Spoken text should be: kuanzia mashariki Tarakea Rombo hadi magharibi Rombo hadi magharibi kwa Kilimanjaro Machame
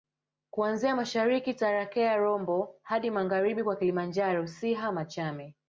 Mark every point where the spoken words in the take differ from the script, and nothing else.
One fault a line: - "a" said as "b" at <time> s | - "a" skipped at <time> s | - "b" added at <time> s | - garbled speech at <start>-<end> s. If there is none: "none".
- "Rombo hadi magharibi" skipped at 3.6 s
- "Siha" added at 4.5 s